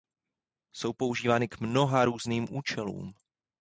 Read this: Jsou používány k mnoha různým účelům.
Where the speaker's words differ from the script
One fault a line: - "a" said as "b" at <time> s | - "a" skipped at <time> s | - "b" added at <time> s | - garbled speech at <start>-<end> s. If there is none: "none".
none